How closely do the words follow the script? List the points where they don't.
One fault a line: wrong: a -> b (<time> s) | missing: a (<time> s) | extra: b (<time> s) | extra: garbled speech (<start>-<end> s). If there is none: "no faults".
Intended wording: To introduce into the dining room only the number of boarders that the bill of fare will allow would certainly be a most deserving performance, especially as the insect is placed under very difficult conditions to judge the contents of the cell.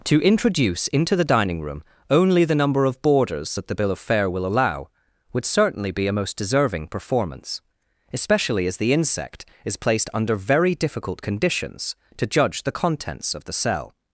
no faults